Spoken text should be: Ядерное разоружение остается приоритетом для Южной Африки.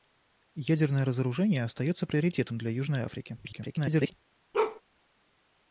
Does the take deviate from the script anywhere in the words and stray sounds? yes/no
yes